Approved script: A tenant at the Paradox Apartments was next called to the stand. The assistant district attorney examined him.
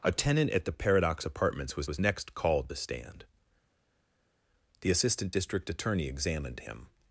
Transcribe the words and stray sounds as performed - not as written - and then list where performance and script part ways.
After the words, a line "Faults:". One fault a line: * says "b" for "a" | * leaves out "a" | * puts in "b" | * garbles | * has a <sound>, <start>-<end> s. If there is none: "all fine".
A tenant at the Paradox Apartments was was next called the stand. The assistant district attorney examined him.
Faults:
* puts in "was"
* leaves out "to"